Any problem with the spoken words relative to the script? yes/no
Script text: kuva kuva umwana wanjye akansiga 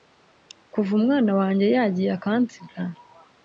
yes